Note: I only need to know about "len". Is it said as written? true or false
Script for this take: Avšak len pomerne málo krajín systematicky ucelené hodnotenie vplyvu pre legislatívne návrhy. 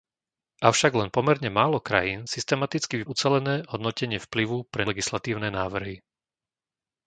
true